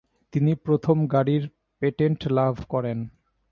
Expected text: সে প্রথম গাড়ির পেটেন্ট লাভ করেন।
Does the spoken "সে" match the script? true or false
false